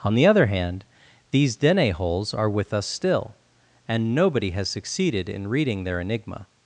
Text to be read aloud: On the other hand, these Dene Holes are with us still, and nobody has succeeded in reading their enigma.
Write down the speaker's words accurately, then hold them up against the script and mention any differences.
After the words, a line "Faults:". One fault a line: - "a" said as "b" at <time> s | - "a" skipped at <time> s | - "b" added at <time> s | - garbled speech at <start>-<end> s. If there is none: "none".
On the other hand, these Dene Holes are with us still, and nobody has succeeded in reading their enigma.
Faults:
none